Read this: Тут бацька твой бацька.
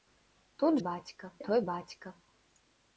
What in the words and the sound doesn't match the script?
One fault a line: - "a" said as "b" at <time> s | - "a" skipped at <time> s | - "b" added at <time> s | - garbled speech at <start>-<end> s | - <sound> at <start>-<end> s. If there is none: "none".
none